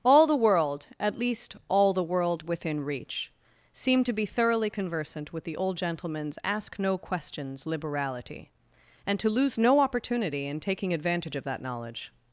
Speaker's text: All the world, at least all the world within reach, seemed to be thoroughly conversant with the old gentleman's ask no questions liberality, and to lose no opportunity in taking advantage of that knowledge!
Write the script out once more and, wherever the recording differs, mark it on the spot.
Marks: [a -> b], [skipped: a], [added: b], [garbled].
All the world, at least all the world within reach, seemed to be thoroughly conversant with the old gentleman's ask no questions liberality, and to lose no opportunity in taking advantage of that knowledge!